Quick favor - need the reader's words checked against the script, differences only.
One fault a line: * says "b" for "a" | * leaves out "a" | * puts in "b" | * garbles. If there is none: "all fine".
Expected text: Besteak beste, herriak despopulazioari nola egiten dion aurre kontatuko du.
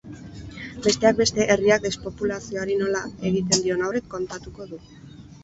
all fine